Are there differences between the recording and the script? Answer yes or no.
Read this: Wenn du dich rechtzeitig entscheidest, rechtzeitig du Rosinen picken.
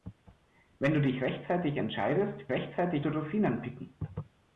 no